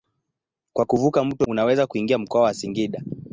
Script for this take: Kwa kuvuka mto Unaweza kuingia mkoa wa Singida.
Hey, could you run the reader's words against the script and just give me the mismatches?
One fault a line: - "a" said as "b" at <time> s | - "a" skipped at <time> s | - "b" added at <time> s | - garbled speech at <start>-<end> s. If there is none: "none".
none